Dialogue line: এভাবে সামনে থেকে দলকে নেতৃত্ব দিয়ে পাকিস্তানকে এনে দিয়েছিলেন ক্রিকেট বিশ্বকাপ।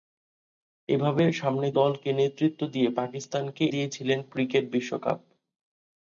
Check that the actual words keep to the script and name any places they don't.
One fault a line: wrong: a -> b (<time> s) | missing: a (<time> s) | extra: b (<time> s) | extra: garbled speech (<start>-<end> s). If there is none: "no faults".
missing: থেকে (1.7 s)
missing: এনে (3.6 s)